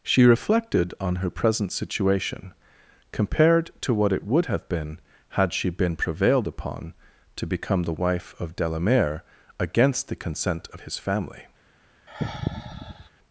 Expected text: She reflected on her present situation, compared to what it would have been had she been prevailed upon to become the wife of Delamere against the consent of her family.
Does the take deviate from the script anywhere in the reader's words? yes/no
yes